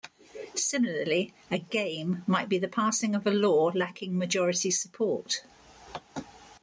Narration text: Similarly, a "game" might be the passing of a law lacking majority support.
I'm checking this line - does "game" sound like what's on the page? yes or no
yes